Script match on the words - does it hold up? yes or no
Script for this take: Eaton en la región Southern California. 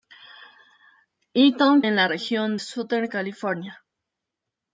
yes